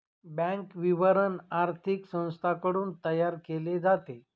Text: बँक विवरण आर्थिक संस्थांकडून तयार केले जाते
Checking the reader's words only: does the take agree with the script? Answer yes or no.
yes